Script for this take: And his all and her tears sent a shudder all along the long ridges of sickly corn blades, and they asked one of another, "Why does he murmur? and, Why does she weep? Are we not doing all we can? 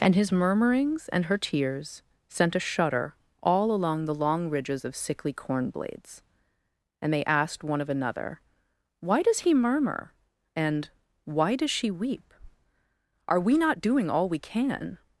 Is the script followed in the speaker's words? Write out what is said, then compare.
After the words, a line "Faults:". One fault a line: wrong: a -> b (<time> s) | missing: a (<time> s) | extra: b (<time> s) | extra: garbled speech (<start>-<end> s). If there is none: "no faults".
And his murmurings and her tears sent a shudder all along the long ridges of sickly corn blades, and they asked one of another, "Why does he murmur? and, Why does she weep? Are we not doing all we can?
Faults:
wrong: all -> murmurings (0.3 s)